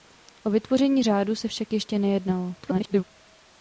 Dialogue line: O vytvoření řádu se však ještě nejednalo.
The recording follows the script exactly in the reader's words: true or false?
false